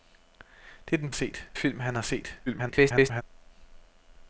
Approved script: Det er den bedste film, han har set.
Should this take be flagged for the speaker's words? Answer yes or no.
yes